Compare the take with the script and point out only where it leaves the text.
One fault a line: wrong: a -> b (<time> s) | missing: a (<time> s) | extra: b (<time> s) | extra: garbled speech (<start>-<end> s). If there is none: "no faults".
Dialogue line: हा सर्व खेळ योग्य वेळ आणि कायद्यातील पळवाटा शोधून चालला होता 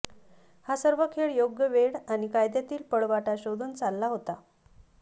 no faults